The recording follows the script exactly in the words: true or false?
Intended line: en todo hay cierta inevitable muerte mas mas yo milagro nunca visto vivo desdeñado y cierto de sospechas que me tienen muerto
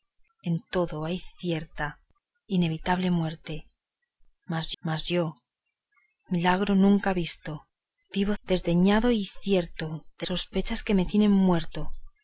true